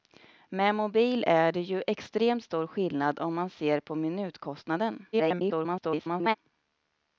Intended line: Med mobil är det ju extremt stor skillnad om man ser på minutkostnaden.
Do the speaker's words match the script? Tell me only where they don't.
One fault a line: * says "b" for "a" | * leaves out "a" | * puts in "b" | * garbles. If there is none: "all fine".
* garbles